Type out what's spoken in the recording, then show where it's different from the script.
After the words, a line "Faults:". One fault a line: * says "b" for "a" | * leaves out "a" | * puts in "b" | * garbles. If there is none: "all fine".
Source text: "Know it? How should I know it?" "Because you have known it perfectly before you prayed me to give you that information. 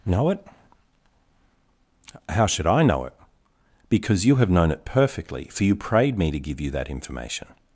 "Know it? How should I know it?" "Because you have known it perfectly for you prayed me to give you that information.
Faults:
* says "for" for "before"